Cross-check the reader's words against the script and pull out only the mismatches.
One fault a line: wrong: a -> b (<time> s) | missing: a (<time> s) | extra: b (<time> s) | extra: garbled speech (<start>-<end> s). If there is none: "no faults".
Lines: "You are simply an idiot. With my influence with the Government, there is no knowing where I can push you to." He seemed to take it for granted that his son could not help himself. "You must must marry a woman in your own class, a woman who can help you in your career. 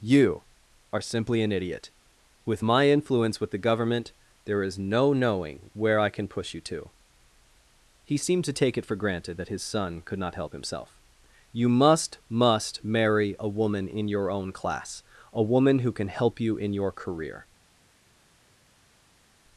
no faults